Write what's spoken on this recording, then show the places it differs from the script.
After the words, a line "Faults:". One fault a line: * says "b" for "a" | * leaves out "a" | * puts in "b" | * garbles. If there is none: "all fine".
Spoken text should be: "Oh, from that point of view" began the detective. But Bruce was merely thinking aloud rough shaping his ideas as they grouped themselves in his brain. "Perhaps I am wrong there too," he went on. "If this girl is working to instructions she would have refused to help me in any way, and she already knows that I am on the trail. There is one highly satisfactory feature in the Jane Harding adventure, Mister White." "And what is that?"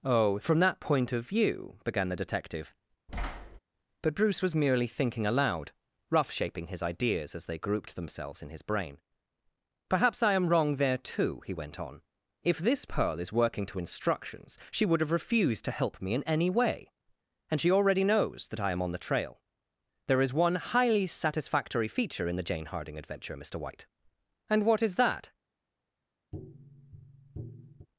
"Oh, from that point of view" began the detective. But Bruce was merely thinking aloud rough shaping his ideas as they grouped themselves in his brain. "Perhaps I am wrong there too," he went on. "If this pearl is working to instructions she would have refused to help me in any way, and she already knows that I am on the trail. There is one highly satisfactory feature in the Jane Harding adventure, Mister White." "And what is that?"
Faults:
* says "pearl" for "girl"